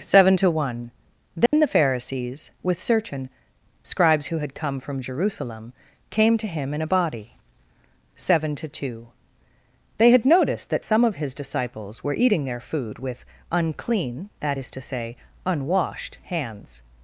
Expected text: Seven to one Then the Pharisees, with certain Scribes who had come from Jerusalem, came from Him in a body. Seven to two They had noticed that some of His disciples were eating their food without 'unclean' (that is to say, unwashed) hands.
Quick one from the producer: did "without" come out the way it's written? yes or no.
no